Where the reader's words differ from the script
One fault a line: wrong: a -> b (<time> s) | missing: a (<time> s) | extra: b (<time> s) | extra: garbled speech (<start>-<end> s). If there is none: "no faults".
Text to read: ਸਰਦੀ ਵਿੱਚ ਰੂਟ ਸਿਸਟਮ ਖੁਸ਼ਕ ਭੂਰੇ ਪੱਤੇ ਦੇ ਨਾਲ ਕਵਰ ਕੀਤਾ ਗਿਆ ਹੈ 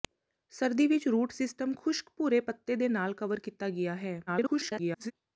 extra: garbled speech (4.3-5.1 s)